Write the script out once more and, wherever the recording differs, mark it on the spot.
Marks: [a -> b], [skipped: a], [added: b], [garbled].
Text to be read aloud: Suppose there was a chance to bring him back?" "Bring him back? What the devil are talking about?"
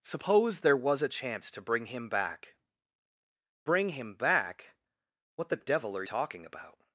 Suppose there was a chance to bring him back?" "Bring him back? What the devil are talking about?"